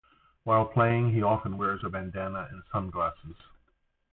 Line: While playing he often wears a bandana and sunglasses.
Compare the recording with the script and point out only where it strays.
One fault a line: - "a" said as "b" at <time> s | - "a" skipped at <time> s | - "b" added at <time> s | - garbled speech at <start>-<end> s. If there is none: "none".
none